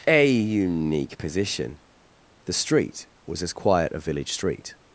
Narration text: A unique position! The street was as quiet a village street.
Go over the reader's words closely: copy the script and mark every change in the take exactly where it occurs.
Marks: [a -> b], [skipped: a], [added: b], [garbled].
A unique position! The street was as quiet a village street.